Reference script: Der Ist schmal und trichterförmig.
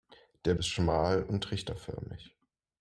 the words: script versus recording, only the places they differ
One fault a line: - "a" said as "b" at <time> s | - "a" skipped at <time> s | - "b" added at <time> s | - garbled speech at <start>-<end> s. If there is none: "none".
none